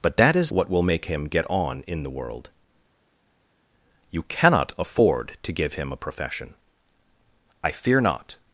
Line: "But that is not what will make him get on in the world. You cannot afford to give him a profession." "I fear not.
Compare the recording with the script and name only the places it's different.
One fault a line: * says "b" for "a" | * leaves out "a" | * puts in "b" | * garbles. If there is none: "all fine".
* leaves out "not"